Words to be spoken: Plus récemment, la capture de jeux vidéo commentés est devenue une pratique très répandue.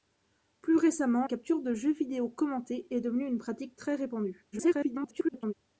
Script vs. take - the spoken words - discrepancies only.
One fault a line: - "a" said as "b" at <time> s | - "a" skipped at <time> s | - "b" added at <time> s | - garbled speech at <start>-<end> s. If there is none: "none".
- "la" skipped at 1.3 s
- garbled speech at 4.5-5.5 s